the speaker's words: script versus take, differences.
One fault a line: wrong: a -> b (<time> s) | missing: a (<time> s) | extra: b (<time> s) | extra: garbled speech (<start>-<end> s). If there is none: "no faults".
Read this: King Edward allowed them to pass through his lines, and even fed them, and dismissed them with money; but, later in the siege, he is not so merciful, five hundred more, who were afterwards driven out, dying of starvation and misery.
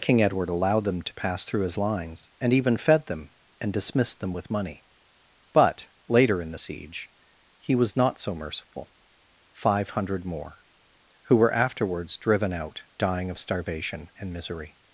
wrong: is -> was (7.7 s)